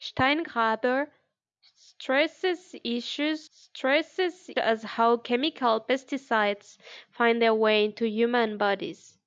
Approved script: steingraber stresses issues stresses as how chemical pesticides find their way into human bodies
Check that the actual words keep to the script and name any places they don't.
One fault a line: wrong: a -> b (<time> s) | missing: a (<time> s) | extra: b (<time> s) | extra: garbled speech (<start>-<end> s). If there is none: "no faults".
no faults